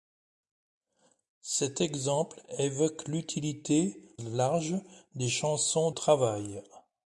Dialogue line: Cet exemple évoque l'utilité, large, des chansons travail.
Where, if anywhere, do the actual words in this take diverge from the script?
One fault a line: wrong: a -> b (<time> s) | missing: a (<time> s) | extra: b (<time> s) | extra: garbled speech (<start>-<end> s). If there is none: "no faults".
no faults